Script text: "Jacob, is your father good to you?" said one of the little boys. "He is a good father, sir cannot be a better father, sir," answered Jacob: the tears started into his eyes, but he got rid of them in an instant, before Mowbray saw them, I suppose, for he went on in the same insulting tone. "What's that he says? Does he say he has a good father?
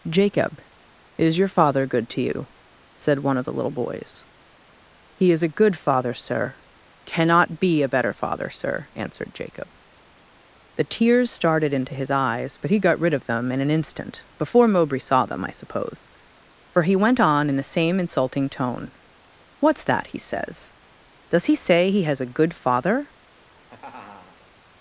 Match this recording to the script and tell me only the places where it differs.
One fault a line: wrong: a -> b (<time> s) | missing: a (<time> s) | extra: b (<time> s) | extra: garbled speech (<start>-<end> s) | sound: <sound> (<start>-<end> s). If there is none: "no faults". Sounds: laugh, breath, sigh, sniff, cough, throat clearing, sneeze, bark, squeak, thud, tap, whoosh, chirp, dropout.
sound: laugh (23.3-24.5 s)